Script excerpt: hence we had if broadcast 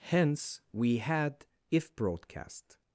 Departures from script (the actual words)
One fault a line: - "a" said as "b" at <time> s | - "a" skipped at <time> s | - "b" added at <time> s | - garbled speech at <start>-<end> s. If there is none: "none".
none